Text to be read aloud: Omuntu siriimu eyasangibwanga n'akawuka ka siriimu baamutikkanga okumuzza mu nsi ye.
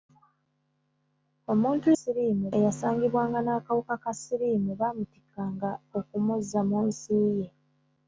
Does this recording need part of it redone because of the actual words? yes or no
no